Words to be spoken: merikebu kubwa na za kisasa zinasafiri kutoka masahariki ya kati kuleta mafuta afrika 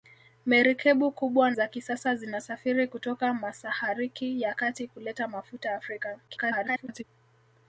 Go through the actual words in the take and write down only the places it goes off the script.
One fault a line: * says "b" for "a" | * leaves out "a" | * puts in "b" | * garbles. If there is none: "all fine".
* leaves out "na"
* garbles